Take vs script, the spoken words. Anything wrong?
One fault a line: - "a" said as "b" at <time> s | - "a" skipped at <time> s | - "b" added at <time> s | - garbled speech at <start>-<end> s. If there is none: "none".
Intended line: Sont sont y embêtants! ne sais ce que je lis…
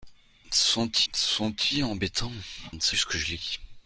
none